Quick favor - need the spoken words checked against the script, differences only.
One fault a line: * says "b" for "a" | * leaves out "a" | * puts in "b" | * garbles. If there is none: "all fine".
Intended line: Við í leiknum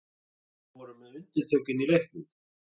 * puts in "vorum með undirtökin"